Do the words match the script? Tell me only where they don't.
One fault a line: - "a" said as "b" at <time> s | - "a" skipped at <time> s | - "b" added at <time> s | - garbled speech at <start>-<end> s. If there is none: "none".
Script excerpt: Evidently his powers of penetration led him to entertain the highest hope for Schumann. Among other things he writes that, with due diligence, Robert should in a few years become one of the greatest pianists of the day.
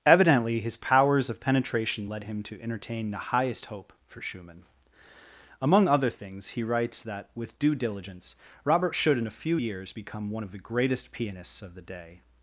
none